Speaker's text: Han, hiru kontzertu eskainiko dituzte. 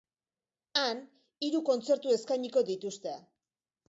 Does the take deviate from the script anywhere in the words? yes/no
no